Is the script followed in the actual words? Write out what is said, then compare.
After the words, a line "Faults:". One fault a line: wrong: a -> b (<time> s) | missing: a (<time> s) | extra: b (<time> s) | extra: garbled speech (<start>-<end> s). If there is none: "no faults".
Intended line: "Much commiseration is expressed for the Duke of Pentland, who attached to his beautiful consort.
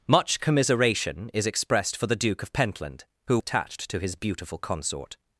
"Much commiseration is expressed for the Duke of Pentland, who attached to his beautiful consort.
Faults:
no faults